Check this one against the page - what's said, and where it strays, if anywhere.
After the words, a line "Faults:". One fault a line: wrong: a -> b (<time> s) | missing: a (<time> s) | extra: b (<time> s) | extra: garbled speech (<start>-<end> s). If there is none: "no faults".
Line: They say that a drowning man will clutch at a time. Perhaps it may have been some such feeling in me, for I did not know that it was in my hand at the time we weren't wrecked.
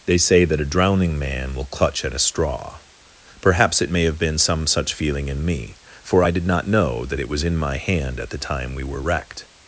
They say that a drowning man will clutch at a straw. Perhaps it may have been some such feeling in me, for I did not know that it was in my hand at the time we were wrecked.
Faults:
wrong: time -> straw (2.2 s)
wrong: weren't -> were (8.8 s)